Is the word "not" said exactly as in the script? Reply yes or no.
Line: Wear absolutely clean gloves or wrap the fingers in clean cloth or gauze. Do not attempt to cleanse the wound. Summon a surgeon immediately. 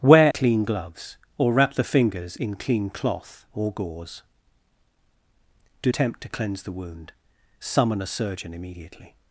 no